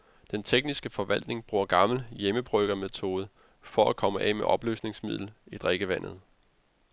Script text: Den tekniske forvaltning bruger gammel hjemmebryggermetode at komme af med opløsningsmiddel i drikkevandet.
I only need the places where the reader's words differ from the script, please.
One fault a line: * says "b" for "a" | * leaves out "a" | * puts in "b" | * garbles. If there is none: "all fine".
* puts in "for"